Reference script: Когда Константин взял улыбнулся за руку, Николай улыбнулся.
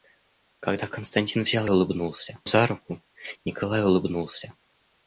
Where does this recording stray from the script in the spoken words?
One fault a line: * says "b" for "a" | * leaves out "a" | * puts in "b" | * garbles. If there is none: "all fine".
all fine